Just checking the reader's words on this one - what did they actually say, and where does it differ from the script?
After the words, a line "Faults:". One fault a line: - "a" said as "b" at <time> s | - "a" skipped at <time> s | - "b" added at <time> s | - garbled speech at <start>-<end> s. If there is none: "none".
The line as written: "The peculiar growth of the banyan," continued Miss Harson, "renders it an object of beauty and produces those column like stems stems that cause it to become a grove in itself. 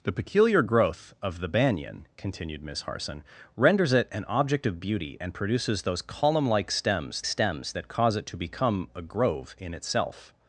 "The peculiar growth of the banyan," continued Miss Harson, "renders it an object of beauty and produces those column like stems stems that cause it to become a grove in itself.
Faults:
none